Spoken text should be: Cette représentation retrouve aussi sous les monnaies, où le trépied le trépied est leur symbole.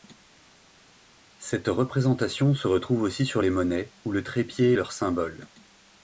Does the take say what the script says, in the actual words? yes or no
no